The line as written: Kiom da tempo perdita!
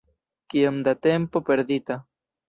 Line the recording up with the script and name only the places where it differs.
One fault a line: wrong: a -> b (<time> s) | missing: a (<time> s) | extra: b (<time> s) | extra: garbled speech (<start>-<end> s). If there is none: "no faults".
no faults